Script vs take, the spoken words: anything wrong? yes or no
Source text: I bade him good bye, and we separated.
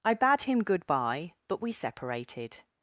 yes